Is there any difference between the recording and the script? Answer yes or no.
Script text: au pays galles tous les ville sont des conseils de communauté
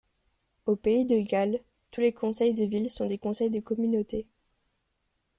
yes